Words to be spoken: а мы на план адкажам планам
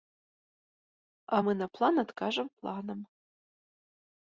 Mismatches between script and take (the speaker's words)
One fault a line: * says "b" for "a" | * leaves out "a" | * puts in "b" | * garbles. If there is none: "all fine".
all fine